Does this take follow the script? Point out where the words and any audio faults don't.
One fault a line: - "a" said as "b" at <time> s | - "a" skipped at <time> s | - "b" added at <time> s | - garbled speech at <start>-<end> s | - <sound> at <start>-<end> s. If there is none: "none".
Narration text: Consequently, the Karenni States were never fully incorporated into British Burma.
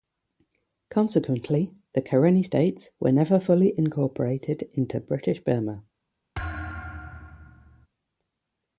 - thud at 6.3-7.9 s